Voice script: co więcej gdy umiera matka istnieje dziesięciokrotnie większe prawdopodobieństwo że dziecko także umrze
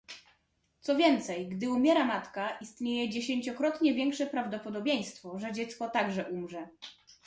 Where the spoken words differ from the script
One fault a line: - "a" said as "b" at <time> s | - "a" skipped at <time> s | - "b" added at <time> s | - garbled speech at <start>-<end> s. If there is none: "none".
none